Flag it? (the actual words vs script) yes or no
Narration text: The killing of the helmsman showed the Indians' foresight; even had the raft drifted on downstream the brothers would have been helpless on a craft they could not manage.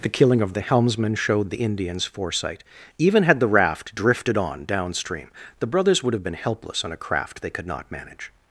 no